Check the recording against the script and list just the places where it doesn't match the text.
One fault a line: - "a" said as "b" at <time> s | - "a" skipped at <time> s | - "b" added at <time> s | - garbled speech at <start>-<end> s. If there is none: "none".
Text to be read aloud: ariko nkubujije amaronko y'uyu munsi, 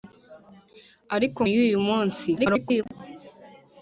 - "nkubujije amaronko" skipped at 1.4 s
- garbled speech at 2.4-2.8 s